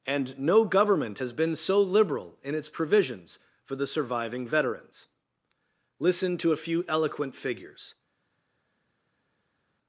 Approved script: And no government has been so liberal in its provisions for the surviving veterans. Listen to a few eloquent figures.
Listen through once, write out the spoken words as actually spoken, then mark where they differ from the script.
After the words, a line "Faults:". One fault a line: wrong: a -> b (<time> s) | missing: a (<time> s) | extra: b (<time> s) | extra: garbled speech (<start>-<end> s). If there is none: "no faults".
And no government has been so liberal in its provisions for the surviving veterans. Listen to a few eloquent figures.
Faults:
no faults